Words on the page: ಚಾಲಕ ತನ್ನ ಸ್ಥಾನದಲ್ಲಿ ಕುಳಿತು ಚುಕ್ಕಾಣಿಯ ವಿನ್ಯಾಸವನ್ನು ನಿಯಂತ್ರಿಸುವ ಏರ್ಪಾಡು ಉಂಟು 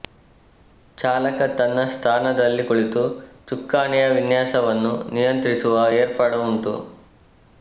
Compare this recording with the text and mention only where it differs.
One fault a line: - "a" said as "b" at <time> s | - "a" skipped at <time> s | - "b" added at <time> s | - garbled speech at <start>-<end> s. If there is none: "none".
none